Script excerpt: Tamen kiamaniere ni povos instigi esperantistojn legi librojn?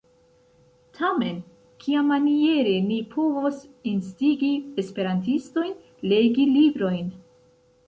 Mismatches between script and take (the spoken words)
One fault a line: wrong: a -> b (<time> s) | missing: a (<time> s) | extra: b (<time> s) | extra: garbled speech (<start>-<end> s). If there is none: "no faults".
no faults